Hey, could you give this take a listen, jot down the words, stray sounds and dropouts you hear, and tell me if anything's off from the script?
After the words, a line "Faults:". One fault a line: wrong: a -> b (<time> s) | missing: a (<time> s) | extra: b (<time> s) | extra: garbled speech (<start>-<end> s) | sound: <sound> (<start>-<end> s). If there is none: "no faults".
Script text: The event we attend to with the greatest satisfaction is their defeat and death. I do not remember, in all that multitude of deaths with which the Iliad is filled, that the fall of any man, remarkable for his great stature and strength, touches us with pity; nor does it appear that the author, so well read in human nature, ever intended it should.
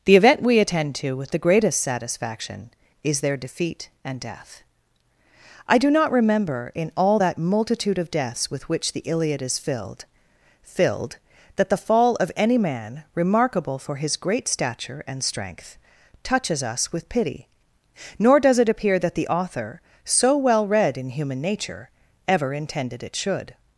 The event we attend to with the greatest satisfaction is their defeat and death. I do not remember, in all that multitude of deaths with which the Iliad is filled filled, that the fall of any man, remarkable for his great stature and strength, touches us with pity; nor does it appear that the author, so well read in human nature, ever intended it should.
Faults:
extra: filled (10.6 s)